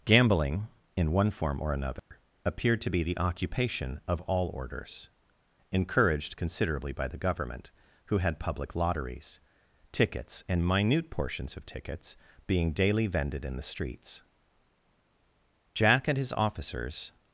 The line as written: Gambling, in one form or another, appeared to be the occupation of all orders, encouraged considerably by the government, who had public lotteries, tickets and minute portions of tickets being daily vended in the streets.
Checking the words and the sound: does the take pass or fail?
fail